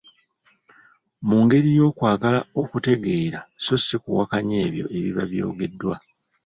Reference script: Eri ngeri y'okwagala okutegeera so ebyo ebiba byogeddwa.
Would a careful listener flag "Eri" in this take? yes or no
yes